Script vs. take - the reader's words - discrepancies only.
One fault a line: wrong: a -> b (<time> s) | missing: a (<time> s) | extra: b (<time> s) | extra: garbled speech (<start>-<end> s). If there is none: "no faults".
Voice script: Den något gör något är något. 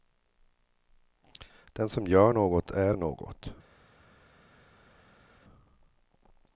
wrong: något -> som (1.9 s)